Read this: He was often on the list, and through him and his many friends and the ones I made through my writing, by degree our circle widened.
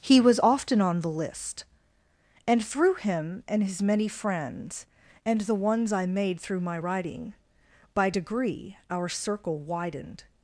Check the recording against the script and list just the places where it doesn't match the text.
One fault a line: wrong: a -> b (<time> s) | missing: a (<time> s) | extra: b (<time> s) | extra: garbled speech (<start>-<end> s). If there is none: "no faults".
no faults